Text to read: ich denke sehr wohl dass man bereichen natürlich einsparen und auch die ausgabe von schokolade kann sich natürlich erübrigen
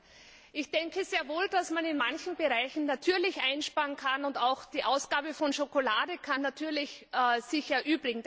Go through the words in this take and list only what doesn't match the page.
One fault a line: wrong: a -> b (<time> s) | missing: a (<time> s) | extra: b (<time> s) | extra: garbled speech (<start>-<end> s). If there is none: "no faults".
extra: in manchen (1.9 s)
extra: kann (4.0 s)